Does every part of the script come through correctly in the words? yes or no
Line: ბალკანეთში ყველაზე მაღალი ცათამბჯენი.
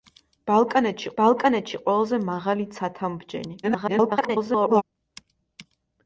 no